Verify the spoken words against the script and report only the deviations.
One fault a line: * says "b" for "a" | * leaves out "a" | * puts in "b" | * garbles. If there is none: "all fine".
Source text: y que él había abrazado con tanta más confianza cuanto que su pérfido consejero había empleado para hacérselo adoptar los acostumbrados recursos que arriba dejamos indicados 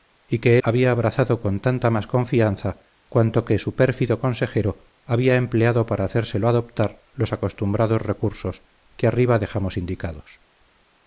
* leaves out "él"